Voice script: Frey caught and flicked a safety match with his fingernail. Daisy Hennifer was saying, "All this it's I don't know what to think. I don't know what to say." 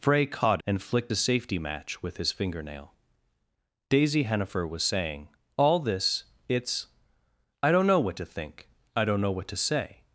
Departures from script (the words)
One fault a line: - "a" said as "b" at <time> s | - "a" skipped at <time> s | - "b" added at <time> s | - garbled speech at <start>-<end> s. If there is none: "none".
none